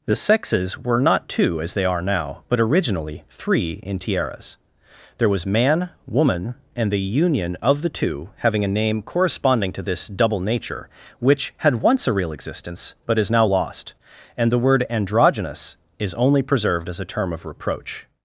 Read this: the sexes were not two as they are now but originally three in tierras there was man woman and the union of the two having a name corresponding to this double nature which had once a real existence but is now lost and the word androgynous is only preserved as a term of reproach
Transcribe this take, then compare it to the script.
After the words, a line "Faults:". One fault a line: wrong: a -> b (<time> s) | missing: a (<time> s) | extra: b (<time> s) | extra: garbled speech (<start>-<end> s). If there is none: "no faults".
the sexes were not two as they are now but originally three in tierras there was man woman and the union of the two having a name corresponding to this double nature which had once a real existence but is now lost and the word androgynous is only preserved as a term of reproach
Faults:
no faults